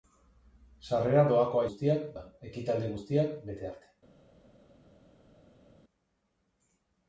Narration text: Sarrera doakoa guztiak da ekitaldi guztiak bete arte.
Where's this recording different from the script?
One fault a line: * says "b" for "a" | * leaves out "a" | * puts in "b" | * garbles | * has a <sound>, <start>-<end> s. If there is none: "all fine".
all fine